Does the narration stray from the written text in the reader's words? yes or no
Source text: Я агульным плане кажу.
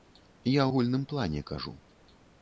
no